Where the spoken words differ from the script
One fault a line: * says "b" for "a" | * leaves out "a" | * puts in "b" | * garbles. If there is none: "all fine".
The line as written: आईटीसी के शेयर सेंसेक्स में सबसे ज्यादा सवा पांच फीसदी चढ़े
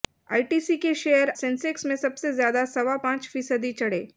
all fine